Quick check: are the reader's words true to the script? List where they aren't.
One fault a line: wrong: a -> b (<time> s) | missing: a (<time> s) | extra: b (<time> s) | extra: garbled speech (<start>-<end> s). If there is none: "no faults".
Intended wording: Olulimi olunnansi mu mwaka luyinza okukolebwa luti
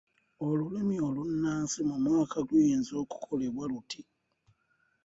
no faults